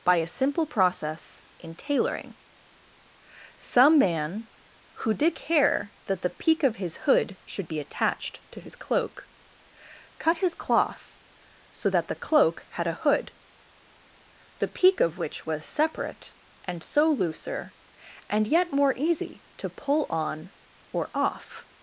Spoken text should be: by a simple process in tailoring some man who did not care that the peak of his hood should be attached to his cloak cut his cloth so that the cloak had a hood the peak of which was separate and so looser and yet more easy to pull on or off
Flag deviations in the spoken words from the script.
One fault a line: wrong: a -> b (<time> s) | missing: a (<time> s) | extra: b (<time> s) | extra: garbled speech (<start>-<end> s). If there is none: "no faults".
missing: not (5.4 s)